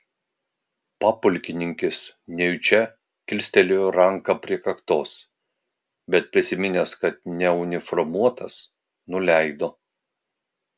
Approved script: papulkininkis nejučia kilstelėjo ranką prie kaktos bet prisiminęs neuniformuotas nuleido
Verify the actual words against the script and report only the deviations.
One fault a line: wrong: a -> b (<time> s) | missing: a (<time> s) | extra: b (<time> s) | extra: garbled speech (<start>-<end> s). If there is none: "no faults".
extra: kad (7.1 s)